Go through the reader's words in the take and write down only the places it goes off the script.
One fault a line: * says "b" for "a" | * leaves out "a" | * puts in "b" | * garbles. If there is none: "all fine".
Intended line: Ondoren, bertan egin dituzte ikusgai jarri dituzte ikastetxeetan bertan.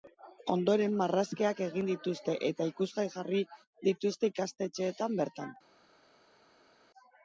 * says "marrazkiak" for "bertan"
* puts in "eta"